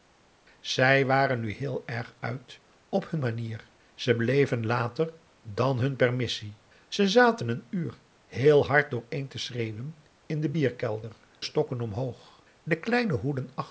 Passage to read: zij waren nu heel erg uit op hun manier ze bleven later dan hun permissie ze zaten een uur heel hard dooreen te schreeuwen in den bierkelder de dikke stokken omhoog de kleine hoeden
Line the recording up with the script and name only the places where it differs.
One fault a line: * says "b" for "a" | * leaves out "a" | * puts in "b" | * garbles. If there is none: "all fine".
* leaves out "de dikke"